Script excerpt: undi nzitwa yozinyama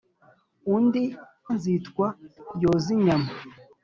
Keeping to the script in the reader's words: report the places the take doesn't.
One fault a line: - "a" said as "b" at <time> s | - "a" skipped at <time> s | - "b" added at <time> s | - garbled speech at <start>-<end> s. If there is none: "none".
none